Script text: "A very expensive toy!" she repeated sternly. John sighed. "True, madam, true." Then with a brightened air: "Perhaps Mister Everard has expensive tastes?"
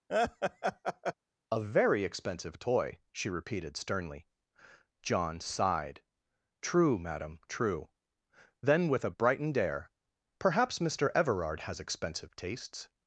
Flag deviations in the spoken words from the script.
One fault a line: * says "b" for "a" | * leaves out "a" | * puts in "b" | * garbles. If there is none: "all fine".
all fine